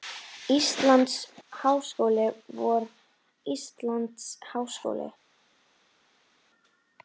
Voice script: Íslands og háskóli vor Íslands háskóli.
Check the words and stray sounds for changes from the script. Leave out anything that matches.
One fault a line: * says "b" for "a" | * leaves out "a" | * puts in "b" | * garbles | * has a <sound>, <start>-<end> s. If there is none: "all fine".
* leaves out "og"